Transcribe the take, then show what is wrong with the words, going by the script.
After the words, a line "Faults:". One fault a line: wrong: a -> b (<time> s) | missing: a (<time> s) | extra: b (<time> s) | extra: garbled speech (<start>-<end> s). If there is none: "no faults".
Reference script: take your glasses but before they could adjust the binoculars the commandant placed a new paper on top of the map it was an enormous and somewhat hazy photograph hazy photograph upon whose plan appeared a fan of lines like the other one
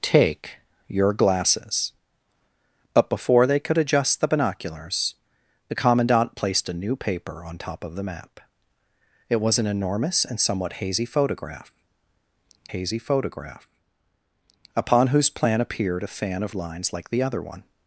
take your glasses but before they could adjust the binoculars the commandant placed a new paper on top of the map it was an enormous and somewhat hazy photograph hazy photograph upon whose plan appeared a fan of lines like the other one
Faults:
no faults